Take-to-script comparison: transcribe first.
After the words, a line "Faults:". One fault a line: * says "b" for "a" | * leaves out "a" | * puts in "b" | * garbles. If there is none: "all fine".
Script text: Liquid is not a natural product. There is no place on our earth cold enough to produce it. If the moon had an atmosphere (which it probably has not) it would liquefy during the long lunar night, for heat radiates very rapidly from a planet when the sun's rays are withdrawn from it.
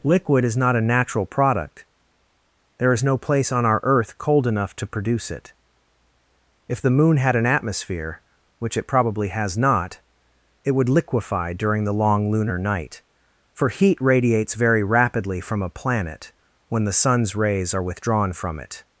Liquid is not a natural product. There is no place on our earth cold enough to produce it. If the moon had an atmosphere (which it probably has not) it would liquefy during the long lunar night, for heat radiates very rapidly from a planet when the sun's rays are withdrawn from it.
Faults:
all fine